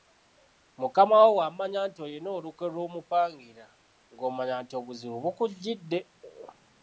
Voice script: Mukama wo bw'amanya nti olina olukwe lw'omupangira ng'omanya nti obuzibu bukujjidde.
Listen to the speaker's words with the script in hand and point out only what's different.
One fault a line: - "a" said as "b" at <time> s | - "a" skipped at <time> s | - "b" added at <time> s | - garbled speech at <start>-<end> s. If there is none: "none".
none